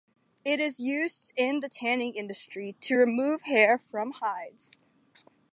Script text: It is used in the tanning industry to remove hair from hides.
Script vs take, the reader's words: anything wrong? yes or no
no